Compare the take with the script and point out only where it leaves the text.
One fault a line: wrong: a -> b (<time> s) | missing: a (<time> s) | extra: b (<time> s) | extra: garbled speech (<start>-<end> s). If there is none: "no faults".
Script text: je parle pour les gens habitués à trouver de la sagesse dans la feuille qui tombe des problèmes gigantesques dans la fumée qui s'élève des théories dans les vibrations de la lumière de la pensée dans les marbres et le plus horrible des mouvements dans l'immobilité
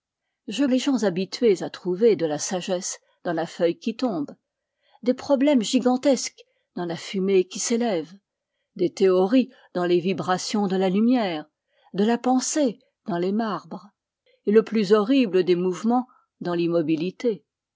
missing: parle pour (0.7 s)